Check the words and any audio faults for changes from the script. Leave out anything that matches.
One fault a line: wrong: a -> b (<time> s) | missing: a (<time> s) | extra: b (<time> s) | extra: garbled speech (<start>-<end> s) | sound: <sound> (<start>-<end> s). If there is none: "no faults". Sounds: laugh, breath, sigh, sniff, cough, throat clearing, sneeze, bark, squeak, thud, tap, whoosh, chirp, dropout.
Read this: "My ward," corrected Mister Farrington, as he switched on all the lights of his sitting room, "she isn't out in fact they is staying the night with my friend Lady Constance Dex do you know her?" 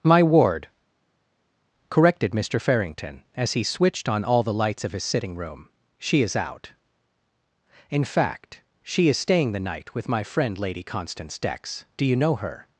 wrong: isn't -> is (6.2 s)
wrong: they -> she (8.8 s)